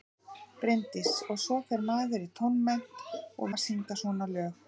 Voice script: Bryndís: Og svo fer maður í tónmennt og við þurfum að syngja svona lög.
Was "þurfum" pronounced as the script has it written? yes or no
no